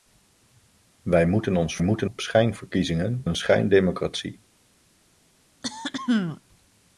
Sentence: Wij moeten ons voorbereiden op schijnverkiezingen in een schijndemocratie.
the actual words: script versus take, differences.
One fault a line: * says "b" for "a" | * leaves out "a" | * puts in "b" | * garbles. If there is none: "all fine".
* says "moeten" for "voorbereiden"
* leaves out "in"